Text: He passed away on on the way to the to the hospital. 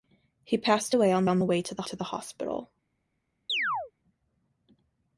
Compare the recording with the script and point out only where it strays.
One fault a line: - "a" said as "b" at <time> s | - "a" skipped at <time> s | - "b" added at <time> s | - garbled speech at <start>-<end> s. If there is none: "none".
none